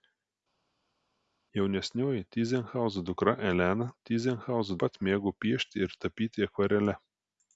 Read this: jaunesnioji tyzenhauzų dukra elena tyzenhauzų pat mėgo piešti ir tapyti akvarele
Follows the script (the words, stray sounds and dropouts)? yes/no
yes